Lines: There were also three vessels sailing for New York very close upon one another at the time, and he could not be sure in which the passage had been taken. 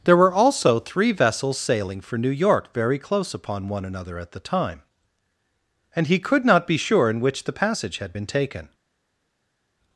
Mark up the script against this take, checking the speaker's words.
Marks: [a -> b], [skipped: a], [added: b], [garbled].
There were also three vessels sailing for New York very close upon one another at the time, and he could not be sure in which the passage had been taken.